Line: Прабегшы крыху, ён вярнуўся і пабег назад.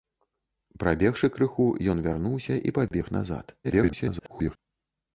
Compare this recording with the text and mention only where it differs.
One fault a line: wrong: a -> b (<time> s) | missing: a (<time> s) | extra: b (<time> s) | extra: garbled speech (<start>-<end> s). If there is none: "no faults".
extra: garbled speech (3.6-4.6 s)